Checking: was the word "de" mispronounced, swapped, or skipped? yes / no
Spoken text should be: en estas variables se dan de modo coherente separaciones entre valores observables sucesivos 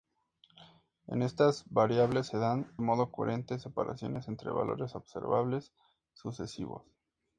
yes